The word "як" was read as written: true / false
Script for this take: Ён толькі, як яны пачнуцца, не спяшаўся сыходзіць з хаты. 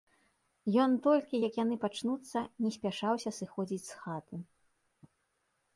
true